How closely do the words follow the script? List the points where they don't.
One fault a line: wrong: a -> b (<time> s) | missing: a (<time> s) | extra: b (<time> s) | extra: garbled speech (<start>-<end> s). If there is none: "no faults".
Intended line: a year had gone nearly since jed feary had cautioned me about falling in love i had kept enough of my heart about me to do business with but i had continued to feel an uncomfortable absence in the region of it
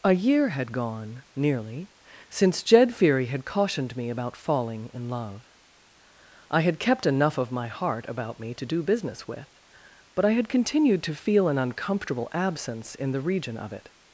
no faults